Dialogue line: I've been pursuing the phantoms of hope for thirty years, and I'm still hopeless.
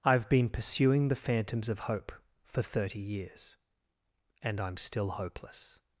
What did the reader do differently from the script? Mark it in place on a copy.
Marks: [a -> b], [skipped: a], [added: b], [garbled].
I've been pursuing the phantoms of hope for thirty years, and I'm still hopeless.